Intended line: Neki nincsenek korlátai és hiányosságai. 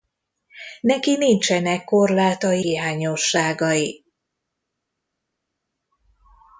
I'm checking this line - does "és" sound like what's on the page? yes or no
no